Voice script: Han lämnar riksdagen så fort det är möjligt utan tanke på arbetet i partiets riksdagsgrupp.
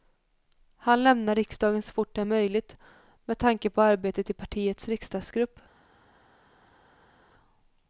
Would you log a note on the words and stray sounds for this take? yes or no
yes